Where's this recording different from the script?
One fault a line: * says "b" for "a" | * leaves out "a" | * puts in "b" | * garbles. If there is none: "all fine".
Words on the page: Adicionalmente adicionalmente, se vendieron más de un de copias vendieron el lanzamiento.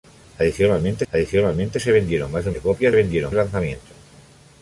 all fine